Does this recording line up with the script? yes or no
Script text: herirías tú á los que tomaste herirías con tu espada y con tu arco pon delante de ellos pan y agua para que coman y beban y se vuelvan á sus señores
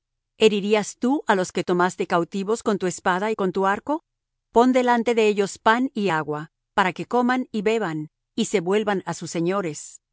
no